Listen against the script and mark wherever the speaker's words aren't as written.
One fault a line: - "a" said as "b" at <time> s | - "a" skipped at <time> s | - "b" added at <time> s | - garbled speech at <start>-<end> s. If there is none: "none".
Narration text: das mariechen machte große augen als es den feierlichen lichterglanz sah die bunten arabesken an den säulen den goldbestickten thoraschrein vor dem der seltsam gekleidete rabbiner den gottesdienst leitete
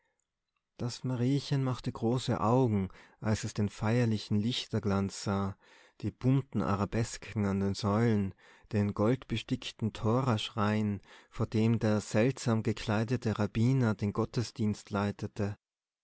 none